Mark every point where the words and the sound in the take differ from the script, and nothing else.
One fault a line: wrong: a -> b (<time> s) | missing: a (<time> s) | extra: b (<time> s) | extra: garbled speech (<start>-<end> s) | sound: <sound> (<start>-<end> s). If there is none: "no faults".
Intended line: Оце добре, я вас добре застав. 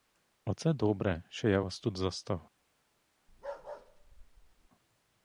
extra: що (1.3 s)
wrong: добре -> тут (1.8 s)
sound: bark (3.3-4.7 s)